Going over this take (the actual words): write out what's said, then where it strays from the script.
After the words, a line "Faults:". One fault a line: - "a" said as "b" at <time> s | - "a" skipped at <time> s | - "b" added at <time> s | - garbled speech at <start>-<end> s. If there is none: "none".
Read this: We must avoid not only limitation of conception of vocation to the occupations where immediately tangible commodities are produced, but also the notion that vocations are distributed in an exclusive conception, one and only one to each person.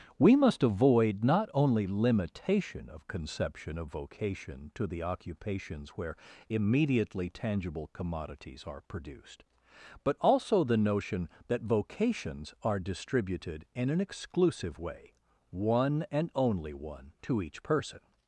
We must avoid not only limitation of conception of vocation to the occupations where immediately tangible commodities are produced, but also the notion that vocations are distributed in an exclusive way, one and only one to each person.
Faults:
- "conception" said as "way" at 14.8 s